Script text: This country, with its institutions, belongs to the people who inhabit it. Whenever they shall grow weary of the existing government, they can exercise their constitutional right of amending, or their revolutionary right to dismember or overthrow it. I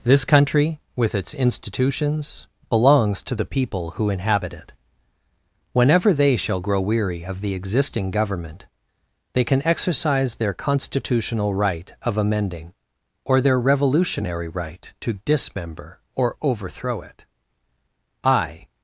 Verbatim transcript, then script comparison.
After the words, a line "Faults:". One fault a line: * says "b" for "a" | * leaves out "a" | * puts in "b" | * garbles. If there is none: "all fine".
This country, with its institutions, belongs to the people who inhabit it. Whenever they shall grow weary of the existing government, they can exercise their constitutional right of amending, or their revolutionary right to dismember or overthrow it. I
Faults:
all fine